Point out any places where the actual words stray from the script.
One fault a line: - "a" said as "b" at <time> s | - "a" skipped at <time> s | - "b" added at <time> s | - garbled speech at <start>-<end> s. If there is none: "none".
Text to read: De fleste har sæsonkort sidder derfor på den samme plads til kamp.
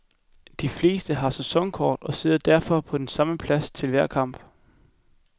- "og" added at 2.0 s
- "hver" added at 3.9 s